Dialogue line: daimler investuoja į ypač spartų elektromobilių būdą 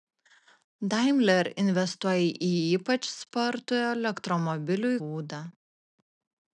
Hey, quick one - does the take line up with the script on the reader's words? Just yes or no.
yes